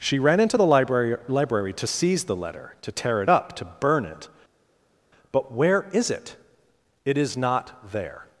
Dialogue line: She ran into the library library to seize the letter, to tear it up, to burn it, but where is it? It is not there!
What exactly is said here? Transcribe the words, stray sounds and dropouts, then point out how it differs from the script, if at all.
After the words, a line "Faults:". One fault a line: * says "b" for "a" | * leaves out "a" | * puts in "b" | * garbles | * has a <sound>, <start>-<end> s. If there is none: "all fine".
She ran into the library library to seize the letter, to tear it up, to burn it, but where is it? It is not there!
Faults:
all fine